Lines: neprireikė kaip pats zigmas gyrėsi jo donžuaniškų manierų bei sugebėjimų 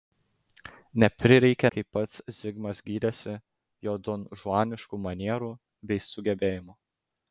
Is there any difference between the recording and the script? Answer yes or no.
no